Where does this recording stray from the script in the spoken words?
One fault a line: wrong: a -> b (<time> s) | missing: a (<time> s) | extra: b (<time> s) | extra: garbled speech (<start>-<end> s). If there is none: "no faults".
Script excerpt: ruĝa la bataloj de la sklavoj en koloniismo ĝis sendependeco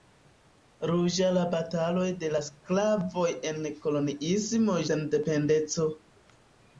missing: ĝis (4.8 s)